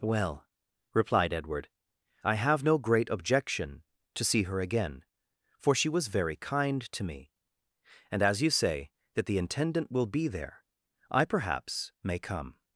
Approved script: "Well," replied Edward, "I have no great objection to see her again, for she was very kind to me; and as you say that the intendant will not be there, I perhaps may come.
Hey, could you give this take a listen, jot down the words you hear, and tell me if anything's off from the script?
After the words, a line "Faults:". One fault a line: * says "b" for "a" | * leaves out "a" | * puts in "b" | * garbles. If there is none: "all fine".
"Well," replied Edward, "I have no great objection to see her again, for she was very kind to me; and as you say that the intendant will be there, I perhaps may come.
Faults:
* leaves out "not"